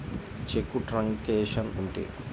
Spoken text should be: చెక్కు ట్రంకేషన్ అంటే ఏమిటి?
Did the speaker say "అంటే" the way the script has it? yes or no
no